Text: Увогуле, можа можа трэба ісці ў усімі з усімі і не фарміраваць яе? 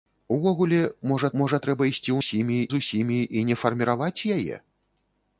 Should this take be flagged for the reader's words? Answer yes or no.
no